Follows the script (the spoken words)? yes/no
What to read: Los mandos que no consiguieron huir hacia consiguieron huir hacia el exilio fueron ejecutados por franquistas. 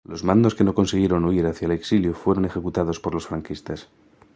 no